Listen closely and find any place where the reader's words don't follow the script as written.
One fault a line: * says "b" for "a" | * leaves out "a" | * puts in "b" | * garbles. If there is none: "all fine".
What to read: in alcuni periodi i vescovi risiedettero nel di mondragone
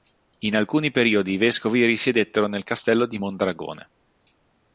* puts in "castello"